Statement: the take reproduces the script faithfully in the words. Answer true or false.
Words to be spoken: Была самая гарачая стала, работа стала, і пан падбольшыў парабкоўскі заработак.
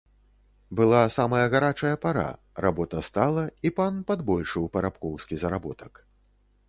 false